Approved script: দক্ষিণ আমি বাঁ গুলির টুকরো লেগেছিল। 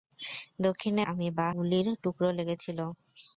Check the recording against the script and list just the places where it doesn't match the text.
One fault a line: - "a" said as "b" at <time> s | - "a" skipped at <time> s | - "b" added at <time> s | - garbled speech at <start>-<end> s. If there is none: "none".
none